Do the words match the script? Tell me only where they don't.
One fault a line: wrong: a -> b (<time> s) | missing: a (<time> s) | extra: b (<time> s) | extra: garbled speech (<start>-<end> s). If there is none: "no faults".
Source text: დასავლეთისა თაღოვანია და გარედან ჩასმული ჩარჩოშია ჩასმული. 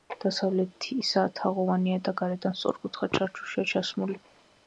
wrong: ჩასმული -> სწორკუთხა (2.6 s)